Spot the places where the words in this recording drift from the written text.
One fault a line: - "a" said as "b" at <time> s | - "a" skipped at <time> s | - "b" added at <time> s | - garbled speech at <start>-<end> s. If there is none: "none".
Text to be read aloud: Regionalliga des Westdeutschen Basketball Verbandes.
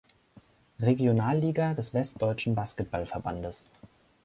none